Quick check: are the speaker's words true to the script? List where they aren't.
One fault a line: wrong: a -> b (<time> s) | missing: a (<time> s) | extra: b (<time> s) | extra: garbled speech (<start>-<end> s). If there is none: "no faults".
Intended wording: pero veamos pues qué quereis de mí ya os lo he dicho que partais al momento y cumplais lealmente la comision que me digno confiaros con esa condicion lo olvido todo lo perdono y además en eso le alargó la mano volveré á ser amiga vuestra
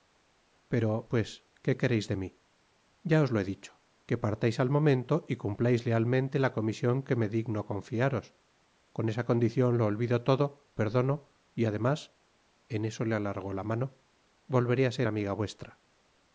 missing: veamos (1.1 s)
missing: lo (10.7 s)